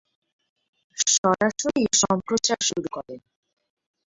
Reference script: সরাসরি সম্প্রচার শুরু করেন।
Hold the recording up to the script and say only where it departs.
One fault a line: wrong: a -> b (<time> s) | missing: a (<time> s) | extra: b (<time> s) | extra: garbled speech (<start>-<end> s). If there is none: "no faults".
no faults